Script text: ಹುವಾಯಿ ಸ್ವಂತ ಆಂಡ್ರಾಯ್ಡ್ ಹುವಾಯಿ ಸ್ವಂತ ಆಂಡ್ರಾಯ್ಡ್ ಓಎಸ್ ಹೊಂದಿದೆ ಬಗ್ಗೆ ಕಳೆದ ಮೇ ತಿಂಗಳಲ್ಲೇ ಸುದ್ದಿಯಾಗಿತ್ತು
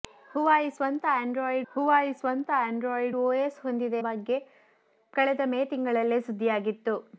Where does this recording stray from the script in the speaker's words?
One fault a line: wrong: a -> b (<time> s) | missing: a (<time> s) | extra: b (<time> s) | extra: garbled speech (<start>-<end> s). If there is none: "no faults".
no faults